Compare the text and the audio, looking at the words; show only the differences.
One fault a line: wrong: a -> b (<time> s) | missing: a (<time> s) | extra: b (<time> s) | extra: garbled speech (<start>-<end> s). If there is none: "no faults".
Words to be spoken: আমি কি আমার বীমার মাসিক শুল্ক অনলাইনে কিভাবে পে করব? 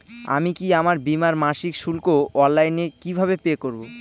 no faults